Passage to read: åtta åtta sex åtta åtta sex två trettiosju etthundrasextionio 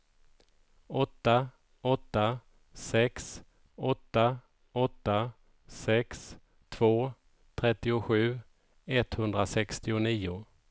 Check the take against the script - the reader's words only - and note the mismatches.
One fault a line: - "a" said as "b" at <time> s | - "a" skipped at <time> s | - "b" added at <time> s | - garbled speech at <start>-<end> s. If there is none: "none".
none